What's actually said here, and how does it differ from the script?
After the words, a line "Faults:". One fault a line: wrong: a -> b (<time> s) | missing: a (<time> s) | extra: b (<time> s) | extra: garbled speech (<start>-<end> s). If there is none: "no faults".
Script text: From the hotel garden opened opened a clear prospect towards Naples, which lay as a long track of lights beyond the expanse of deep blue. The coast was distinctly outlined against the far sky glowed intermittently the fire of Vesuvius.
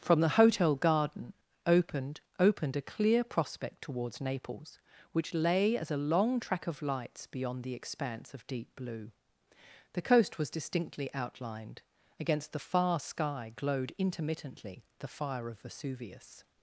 From the hotel garden opened opened a clear prospect towards Naples, which lay as a long track of lights beyond the expanse of deep blue. The coast was distinctly outlined against the far sky glowed intermittently the fire of Vesuvius.
Faults:
no faults